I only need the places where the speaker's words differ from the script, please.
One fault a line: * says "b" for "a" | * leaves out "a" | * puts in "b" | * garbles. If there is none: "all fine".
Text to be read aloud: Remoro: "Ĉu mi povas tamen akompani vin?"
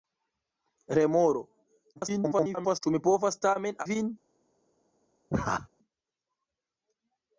* garbles
* leaves out "akompani"